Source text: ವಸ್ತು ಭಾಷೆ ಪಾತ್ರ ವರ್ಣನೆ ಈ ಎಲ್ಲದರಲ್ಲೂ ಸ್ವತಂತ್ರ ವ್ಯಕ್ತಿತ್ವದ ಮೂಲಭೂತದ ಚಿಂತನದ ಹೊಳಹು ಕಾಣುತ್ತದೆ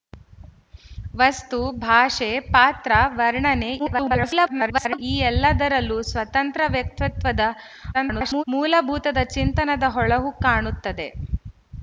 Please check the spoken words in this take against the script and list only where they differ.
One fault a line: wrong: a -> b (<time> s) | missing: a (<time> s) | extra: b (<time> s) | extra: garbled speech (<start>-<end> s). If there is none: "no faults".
extra: garbled speech (3.8-5.0 s)
extra: garbled speech (7.9-8.4 s)